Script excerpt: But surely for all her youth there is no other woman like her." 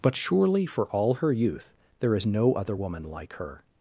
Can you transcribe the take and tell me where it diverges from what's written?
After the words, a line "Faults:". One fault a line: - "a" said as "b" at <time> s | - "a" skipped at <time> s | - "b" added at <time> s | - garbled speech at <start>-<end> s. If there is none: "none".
But surely for all her youth there is no other woman like her."
Faults:
none